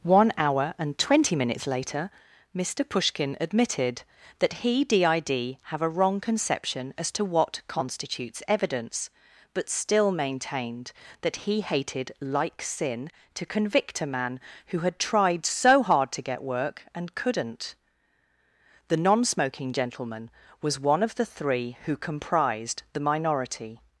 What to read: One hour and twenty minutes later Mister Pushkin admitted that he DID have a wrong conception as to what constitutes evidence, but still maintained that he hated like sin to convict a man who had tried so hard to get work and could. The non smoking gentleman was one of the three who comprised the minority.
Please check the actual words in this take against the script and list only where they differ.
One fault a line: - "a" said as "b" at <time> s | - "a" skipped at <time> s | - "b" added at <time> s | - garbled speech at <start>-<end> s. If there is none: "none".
- "could" said as "couldn't" at 17.1 s